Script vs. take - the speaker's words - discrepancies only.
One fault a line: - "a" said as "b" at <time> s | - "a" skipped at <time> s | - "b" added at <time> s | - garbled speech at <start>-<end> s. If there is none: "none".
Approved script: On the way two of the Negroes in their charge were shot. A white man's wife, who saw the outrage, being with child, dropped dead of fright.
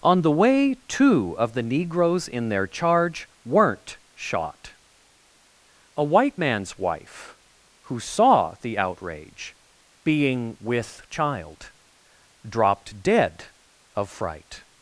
- "were" said as "weren't" at 3.5 s